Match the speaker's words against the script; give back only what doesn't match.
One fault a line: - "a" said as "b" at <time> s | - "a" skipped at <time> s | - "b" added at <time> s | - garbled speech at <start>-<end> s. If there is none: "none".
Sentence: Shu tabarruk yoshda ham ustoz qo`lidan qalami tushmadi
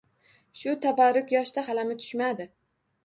- "ham ustoz qo`lidan" skipped at 1.6 s